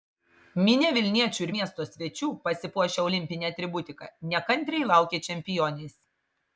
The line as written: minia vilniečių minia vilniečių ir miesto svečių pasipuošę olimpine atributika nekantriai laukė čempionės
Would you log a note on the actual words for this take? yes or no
yes